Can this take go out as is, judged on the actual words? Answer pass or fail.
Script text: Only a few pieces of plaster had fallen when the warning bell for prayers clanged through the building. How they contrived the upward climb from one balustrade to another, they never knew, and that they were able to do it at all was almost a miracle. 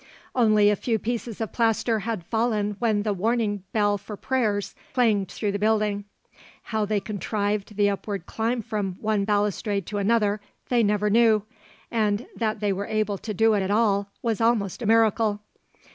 pass